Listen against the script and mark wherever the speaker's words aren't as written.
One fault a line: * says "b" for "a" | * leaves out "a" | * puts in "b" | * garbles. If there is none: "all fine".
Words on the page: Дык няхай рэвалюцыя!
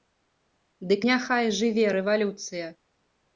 * puts in "жыве"